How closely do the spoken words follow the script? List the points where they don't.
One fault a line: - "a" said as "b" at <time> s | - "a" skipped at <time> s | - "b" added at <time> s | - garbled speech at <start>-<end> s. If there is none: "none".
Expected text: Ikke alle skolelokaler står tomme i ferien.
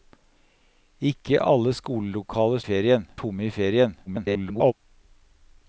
- "står" said as "ferien" at 2.6 s
- garbled speech at 4.1-4.7 s